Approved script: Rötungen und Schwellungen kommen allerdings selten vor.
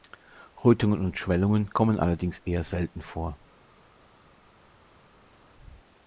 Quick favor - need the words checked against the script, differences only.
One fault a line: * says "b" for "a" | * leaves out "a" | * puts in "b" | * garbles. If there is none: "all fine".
* puts in "eher"